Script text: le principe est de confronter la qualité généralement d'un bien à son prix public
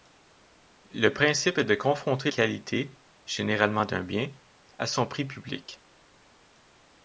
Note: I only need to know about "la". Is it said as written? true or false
false